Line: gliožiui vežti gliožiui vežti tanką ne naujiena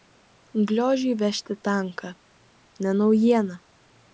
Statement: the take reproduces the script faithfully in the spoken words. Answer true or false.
false